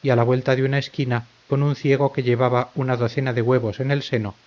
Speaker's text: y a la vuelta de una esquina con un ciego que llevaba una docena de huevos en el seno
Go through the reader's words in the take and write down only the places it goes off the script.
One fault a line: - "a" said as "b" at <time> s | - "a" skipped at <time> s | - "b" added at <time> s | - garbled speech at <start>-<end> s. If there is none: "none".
none